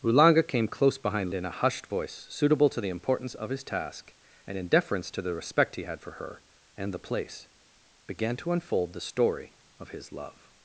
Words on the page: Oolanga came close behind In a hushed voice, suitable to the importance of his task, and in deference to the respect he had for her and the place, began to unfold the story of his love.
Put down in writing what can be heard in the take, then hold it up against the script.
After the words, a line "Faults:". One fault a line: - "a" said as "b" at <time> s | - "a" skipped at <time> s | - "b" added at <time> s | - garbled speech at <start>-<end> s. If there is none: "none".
Oolanga came close behind In a hushed voice, suitable to the importance of his task, and in deference to the respect he had for her and the place, began to unfold the story of his love.
Faults:
none